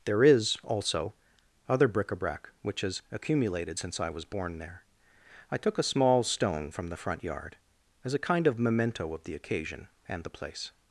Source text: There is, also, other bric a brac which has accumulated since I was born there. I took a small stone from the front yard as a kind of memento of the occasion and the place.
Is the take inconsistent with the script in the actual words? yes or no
no